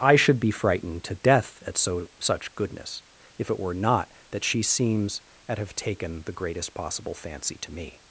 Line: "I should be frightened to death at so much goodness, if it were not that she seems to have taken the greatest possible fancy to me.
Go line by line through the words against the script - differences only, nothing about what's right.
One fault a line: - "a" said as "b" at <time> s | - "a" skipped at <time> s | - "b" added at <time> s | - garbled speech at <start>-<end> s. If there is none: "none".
- "much" said as "such" at 2.2 s
- "to" said as "at" at 5.5 s